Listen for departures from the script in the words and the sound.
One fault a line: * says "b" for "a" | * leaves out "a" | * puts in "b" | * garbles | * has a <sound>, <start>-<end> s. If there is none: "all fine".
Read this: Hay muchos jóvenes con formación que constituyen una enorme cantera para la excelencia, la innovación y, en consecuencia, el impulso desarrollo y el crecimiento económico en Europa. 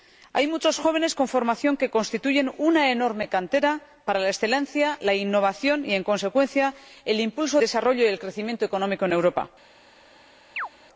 * has a chirp, 10.6-10.7 s